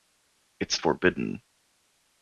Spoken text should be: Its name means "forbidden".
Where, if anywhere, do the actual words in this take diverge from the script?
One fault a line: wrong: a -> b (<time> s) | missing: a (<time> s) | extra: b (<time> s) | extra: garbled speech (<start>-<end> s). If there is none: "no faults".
missing: name means (0.8 s)